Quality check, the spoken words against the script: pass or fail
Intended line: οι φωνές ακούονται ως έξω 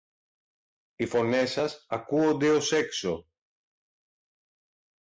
fail